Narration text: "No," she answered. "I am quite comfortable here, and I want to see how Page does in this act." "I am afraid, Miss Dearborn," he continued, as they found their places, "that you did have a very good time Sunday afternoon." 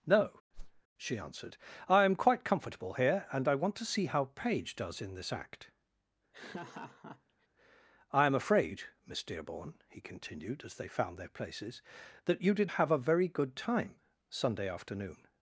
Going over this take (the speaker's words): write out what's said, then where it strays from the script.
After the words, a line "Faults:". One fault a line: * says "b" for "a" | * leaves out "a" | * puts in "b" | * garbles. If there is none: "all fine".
"No," she answered. "I am quite comfortable here, and I want to see how Page does in this act." "I am afraid, Miss Dearborn," he continued, as they found their places, "that you did have a very good time Sunday afternoon."
Faults:
all fine